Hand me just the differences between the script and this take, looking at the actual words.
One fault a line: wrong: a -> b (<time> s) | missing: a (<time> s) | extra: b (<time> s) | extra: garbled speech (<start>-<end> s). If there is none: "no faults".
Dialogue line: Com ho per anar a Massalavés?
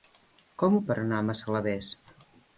no faults